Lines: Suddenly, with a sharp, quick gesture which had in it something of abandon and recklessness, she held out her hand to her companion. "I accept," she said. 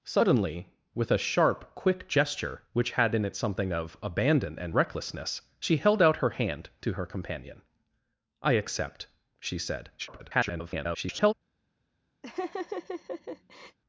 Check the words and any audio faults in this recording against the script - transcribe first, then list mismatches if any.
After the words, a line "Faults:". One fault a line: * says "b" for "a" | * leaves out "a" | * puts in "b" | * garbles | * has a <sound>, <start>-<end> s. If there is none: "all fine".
Suddenly, with a sharp, quick gesture which had in it something of abandon and recklessness, she held out her hand to her companion. "I accept," she said. [garbled]
Faults:
* garbles
* has a laugh, 12.2-13.8 s